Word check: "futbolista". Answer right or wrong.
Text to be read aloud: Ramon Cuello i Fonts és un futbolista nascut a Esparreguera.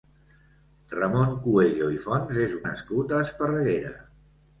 wrong